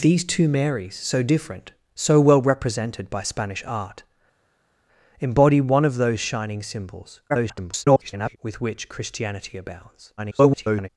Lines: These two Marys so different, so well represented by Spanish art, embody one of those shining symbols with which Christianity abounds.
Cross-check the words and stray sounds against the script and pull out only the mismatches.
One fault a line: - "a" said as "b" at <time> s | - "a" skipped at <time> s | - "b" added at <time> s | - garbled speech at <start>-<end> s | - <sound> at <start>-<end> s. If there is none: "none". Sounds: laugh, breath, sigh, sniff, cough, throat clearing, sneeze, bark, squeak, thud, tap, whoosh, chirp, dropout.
- garbled speech at 7.3-8.4 s
- garbled speech at 10.2-10.9 s